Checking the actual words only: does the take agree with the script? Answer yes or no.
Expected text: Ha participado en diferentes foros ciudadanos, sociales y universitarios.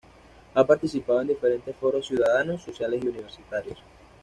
yes